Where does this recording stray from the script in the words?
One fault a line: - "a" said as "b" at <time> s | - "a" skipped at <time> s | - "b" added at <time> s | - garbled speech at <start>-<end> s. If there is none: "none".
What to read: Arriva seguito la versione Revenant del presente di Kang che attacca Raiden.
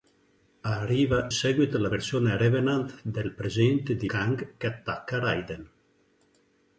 none